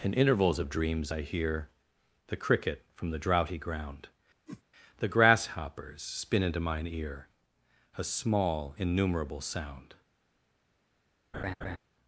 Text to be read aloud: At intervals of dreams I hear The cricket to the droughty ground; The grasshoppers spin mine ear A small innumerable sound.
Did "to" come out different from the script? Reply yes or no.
yes